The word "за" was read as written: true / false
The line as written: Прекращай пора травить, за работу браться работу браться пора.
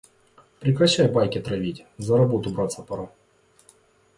true